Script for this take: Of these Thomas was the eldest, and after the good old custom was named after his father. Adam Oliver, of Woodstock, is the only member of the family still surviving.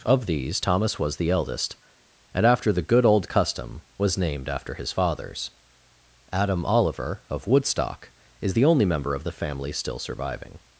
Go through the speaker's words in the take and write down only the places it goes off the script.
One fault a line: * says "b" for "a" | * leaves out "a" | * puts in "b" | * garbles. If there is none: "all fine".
* says "fathers" for "father"